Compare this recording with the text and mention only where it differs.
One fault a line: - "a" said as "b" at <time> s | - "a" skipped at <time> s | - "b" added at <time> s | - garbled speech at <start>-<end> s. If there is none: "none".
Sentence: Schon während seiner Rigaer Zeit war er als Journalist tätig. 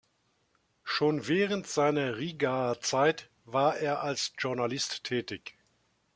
none